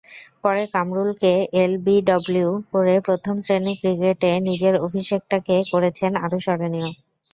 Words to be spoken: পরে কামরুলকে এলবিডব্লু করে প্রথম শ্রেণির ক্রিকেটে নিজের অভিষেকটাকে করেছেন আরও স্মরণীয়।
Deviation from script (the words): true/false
false